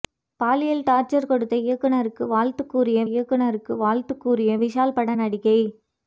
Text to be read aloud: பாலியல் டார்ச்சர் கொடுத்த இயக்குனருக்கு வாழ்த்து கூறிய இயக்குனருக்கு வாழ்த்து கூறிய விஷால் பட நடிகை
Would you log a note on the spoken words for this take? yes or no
no